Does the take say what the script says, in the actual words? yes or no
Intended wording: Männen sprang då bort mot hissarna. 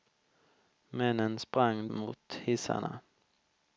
no